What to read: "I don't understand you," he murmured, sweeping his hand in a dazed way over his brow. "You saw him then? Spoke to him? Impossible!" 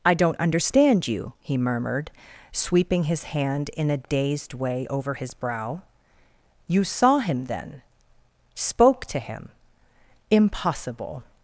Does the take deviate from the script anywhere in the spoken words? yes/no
no